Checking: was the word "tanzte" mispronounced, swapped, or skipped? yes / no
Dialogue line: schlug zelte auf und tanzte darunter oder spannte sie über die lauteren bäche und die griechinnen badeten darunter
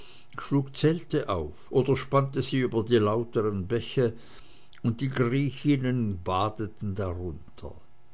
yes